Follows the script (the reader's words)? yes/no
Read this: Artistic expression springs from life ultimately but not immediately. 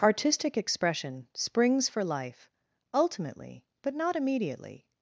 no